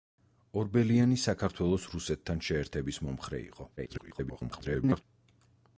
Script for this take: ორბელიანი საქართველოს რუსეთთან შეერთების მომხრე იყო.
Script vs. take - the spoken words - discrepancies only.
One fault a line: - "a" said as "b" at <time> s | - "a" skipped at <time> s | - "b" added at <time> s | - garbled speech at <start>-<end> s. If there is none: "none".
- garbled speech at 3.8-5.0 s